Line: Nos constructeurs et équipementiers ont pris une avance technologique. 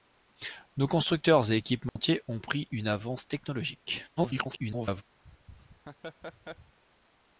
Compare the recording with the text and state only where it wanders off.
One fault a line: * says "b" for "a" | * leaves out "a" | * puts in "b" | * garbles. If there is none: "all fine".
* garbles